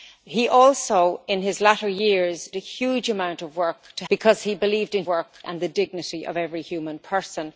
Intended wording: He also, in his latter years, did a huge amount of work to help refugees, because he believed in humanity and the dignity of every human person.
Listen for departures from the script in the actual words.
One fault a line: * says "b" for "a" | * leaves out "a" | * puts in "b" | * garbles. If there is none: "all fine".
* leaves out "did"
* leaves out "help refugees"
* says "work" for "humanity"